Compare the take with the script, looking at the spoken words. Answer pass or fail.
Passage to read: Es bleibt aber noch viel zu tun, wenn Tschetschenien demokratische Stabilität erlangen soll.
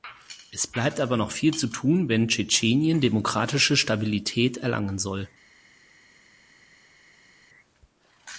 pass